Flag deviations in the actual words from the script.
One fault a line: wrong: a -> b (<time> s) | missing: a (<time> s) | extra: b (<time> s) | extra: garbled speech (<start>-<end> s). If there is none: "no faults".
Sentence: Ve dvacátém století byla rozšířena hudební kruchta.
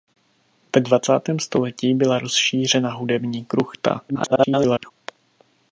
extra: garbled speech (4.1-4.9 s)